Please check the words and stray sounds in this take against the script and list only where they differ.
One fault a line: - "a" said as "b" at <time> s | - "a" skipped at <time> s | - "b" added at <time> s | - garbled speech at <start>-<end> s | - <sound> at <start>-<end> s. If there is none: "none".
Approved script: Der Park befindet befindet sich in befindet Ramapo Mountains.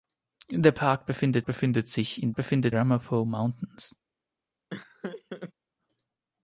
- laugh at 4.7-5.5 s